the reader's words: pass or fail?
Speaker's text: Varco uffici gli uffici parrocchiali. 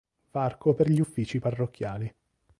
fail